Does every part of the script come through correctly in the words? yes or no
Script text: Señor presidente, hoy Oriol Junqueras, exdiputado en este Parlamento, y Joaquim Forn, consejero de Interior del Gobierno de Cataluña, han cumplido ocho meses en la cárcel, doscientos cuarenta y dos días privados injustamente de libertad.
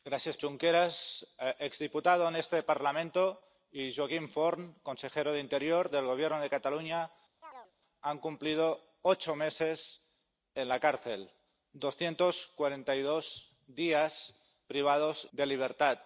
no